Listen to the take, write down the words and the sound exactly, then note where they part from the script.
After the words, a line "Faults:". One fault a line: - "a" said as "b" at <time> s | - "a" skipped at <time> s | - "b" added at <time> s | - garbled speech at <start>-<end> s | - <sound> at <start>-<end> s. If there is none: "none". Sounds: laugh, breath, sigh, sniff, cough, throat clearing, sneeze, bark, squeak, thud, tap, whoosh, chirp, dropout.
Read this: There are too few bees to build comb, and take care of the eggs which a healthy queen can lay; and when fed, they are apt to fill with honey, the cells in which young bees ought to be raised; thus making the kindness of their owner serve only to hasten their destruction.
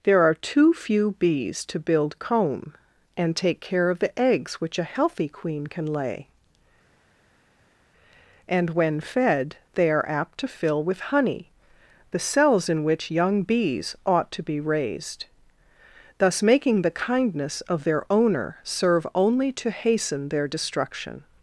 There are too few bees to build comb, and take care of the eggs which a healthy queen can lay; and when fed, they are apt to fill with honey, the cells in which young bees ought to be raised; thus making the kindness of their owner serve only to hasten their destruction.
Faults:
none